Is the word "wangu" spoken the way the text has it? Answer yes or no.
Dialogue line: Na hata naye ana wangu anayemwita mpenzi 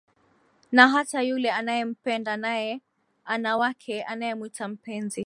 no